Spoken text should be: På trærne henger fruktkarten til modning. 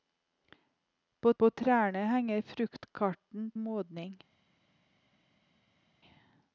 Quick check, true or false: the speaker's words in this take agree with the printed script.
false